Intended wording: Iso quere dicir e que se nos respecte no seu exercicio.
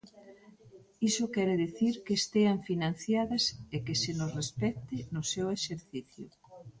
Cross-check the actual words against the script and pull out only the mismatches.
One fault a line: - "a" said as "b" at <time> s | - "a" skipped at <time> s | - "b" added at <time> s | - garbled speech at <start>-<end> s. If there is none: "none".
- "que estean financiadas" added at 2.0 s